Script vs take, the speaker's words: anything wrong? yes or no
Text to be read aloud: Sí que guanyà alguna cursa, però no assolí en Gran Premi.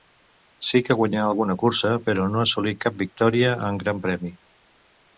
yes